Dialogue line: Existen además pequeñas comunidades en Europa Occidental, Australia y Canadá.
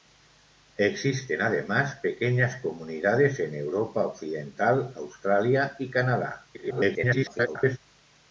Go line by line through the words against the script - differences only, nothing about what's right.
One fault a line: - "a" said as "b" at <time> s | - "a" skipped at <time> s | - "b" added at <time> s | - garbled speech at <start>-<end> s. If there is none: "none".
- garbled speech at 6.5-7.8 s